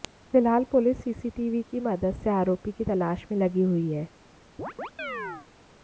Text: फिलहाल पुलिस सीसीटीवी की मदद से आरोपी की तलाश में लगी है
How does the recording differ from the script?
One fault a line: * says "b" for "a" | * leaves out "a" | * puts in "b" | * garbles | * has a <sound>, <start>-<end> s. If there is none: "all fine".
* puts in "हुई"
* has a chirp, 4.6-5.5 s